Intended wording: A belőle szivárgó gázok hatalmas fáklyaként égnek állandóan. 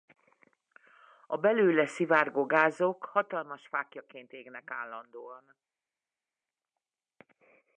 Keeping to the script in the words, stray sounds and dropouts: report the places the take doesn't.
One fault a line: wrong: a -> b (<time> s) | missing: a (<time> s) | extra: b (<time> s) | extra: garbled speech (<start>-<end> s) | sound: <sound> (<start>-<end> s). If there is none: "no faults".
no faults